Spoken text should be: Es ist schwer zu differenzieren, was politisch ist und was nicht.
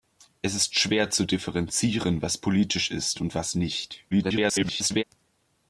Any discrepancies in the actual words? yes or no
yes